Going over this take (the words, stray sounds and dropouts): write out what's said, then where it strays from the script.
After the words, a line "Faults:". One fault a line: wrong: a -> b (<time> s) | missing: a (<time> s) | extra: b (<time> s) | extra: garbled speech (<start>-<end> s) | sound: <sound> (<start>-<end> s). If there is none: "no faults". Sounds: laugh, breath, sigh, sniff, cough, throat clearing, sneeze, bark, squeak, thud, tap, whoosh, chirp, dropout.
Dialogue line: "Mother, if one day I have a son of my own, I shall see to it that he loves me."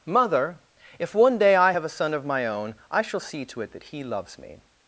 "Mother, if one day I have a son of my own, I shall see to it that he loves me."
Faults:
no faults